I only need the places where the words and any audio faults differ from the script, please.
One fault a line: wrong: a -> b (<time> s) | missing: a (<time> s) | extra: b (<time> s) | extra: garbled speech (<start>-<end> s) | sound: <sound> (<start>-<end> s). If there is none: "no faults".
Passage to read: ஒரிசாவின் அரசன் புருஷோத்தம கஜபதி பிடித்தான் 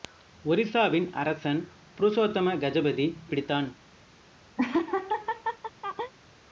sound: laugh (4.6-6.1 s)